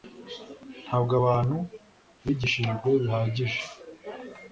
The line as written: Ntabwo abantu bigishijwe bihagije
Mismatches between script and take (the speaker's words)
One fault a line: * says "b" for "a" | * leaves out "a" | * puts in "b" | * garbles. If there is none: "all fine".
all fine